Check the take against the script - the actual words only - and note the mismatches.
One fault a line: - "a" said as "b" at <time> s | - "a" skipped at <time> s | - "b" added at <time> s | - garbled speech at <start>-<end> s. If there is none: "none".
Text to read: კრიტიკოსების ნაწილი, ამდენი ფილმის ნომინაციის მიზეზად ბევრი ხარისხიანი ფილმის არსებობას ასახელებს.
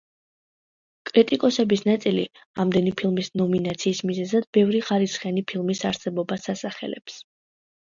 none